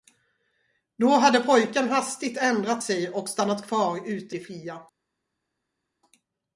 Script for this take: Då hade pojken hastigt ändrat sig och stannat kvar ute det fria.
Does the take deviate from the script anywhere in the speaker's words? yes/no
no